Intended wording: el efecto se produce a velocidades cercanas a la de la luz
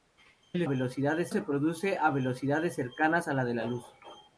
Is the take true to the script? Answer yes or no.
no